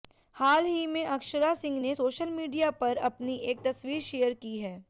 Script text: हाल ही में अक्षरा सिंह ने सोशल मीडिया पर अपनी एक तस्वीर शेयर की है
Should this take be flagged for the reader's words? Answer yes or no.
no